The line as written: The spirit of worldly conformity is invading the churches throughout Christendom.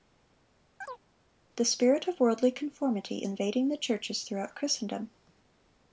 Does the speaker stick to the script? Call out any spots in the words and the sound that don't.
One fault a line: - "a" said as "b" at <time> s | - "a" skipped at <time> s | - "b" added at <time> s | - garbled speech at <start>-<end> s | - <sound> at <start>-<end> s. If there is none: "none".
- chirp at 0.8-1.0 s
- "is" skipped at 3.3 s